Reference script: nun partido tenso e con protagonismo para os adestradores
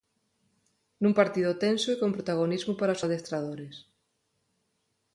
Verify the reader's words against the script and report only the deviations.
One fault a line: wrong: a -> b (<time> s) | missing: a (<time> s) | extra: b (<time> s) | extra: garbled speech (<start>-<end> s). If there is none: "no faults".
no faults